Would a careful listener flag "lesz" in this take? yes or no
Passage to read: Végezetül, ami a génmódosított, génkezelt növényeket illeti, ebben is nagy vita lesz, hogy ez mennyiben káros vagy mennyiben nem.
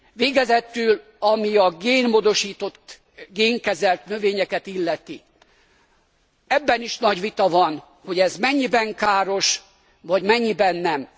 yes